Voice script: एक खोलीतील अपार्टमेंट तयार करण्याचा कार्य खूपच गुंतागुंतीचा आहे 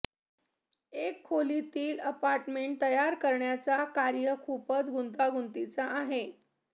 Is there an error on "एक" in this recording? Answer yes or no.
no